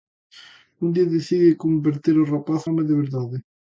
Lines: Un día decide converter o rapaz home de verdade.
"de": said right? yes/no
yes